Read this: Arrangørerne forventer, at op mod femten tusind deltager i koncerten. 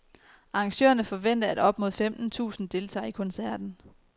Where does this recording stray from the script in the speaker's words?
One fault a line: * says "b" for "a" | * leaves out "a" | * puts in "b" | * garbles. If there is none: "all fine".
all fine